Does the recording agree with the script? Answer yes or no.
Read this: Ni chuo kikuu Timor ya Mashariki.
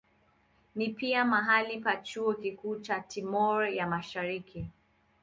no